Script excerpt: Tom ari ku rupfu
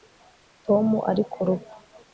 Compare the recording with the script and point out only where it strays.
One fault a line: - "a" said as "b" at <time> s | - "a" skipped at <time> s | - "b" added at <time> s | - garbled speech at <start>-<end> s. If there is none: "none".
none